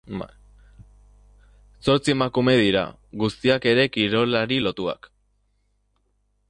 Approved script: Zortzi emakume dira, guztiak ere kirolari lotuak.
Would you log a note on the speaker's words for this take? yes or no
no